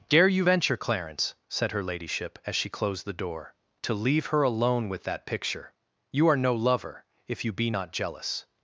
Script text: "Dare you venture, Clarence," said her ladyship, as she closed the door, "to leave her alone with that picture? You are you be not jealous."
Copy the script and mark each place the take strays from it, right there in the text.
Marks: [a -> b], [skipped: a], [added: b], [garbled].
"Dare you venture, Clarence," said her ladyship, as she closed the door, "to leave her alone with that picture? You are [added: no lover if] you be not jealous."